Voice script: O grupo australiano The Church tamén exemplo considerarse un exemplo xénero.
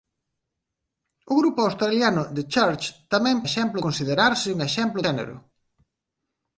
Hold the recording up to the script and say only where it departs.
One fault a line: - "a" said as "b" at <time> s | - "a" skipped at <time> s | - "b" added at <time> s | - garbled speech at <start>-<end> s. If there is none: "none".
none